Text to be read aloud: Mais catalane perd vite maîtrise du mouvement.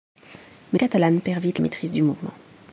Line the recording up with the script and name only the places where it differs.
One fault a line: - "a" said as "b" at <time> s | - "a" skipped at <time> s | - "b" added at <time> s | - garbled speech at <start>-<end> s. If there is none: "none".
none